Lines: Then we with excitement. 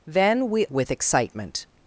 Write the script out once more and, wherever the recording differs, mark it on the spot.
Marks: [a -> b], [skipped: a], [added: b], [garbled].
Then we with excitement.